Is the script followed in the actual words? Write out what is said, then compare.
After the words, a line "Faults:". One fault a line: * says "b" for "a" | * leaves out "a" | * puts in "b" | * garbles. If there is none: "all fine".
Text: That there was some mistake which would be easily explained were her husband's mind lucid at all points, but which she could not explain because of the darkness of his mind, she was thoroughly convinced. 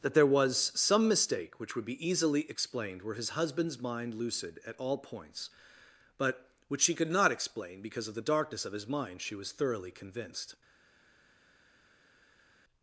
That there was some mistake which would be easily explained were his husband's mind lucid at all points, but which she could not explain because of the darkness of his mind, she was thoroughly convinced.
Faults:
* says "his" for "her"